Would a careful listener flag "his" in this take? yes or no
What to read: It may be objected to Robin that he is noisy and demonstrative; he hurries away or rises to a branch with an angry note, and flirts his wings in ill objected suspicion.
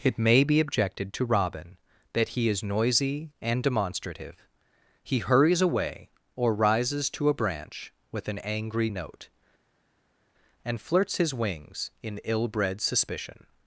no